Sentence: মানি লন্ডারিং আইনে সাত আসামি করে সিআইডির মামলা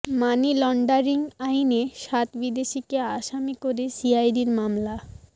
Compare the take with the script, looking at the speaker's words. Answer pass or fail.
fail